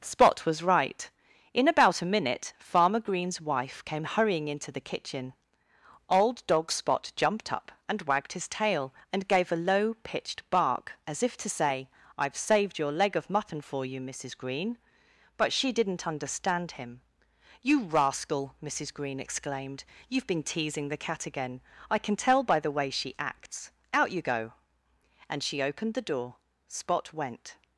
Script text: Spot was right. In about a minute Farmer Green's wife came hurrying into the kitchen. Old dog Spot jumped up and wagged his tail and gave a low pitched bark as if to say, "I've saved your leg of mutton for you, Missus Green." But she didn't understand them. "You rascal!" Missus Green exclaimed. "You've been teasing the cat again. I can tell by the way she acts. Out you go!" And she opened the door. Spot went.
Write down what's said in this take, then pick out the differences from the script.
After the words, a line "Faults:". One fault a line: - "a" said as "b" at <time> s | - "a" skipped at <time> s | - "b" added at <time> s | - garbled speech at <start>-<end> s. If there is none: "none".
Spot was right. In about a minute Farmer Green's wife came hurrying into the kitchen. Old dog Spot jumped up and wagged his tail and gave a low pitched bark as if to say, "I've saved your leg of mutton for you, Missus Green." But she didn't understand him. "You rascal!" Missus Green exclaimed. "You've been teasing the cat again. I can tell by the way she acts. Out you go!" And she opened the door. Spot went.
Faults:
- "them" said as "him" at 16.8 s